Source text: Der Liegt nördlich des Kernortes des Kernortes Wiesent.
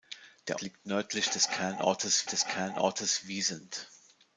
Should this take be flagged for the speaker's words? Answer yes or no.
no